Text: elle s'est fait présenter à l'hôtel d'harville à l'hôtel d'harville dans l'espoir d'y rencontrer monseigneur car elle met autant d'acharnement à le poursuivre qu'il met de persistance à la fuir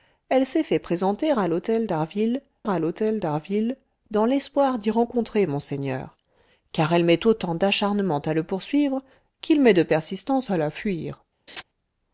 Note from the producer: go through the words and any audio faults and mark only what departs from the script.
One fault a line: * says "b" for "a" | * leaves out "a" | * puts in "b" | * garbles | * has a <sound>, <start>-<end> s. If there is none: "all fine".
* has a laugh, 11.5-11.6 s